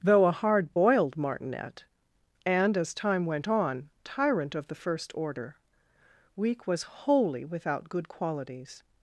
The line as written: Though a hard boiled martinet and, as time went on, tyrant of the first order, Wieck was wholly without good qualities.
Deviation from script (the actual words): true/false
false